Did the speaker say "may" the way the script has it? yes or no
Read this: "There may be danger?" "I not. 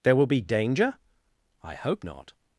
no